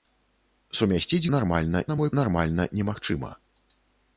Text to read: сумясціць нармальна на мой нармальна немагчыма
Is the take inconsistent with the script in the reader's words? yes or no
no